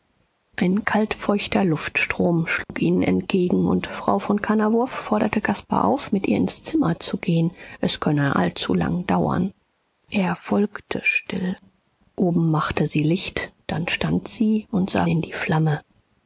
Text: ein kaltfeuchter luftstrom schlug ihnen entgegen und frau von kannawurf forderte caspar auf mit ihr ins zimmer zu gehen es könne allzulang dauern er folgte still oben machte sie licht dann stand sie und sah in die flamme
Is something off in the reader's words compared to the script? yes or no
no